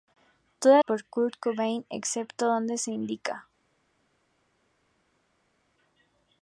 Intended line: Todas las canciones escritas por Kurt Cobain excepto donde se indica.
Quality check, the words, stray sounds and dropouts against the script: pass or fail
fail